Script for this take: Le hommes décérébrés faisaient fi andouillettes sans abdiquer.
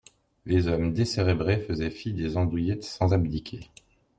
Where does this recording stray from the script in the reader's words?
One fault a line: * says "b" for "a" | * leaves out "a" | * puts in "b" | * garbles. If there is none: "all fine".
* says "Les" for "Le"
* puts in "des"